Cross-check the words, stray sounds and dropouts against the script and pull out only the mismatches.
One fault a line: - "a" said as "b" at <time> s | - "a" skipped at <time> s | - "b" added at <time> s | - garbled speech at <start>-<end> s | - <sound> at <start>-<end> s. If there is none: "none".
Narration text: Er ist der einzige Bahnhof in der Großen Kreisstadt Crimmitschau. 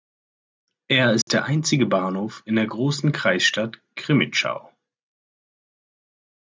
- dropout at 1.2-1.3 s